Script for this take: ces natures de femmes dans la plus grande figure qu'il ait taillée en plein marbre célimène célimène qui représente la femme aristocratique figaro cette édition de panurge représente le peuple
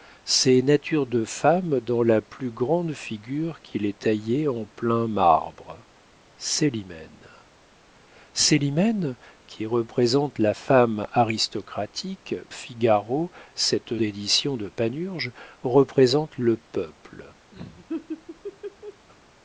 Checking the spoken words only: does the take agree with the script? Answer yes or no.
yes